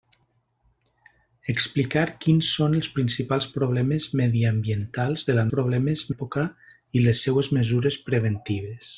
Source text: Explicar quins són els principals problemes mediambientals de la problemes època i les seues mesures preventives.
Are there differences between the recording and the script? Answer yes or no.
no